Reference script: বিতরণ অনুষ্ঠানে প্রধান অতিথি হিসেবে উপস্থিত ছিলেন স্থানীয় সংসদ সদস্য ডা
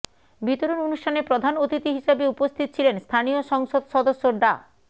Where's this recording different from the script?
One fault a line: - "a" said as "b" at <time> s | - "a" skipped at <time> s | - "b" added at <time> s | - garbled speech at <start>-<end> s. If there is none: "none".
none